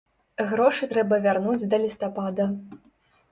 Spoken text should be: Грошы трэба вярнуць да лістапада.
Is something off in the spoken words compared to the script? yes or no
no